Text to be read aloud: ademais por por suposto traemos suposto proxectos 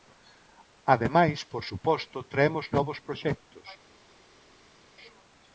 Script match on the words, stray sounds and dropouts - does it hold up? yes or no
no